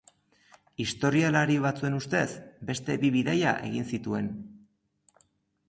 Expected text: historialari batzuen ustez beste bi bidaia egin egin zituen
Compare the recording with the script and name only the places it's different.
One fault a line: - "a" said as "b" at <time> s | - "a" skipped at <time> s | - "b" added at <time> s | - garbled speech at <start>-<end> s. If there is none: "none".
- "egin" skipped at 3.9 s